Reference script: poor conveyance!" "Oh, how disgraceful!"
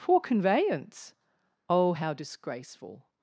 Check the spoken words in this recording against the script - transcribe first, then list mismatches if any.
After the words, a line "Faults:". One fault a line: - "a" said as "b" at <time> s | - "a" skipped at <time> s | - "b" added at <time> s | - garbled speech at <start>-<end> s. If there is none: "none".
poor conveyance!" "Oh, how disgraceful!"
Faults:
none